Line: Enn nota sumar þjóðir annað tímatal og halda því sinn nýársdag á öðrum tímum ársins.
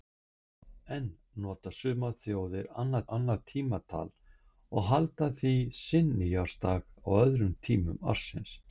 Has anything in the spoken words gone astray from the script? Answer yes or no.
yes